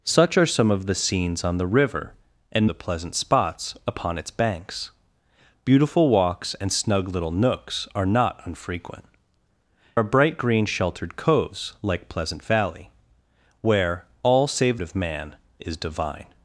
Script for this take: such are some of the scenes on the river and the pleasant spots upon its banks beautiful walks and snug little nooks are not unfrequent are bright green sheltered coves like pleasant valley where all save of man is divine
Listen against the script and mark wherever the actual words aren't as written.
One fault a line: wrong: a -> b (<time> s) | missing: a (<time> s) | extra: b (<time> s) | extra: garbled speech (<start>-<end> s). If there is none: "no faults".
no faults